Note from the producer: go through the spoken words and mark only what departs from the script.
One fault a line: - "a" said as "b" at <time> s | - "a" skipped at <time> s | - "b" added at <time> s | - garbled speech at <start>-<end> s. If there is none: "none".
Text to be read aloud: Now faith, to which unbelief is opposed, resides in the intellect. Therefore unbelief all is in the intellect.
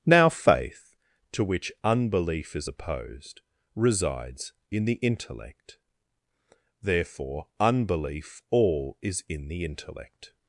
none